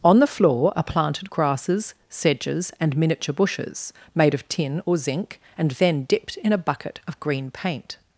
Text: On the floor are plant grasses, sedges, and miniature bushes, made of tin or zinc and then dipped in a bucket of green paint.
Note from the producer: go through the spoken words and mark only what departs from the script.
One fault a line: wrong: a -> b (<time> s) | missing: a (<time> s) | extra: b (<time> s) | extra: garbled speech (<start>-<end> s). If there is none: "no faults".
wrong: plant -> planted (0.8 s)